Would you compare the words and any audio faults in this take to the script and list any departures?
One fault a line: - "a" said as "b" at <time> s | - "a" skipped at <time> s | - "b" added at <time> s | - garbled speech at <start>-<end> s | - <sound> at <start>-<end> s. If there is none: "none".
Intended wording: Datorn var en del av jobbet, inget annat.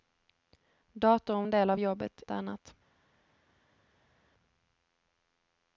- "var" skipped at 1.5 s
- "inget" skipped at 2.2 s